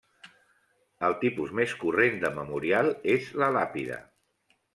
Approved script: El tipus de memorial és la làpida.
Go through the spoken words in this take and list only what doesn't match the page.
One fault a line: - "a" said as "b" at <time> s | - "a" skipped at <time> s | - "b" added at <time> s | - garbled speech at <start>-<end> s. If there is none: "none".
- "més corrent" added at 1.6 s